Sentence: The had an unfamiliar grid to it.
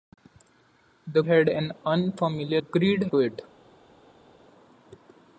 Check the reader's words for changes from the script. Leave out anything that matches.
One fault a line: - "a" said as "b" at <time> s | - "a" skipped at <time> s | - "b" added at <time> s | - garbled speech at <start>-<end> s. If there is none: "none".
none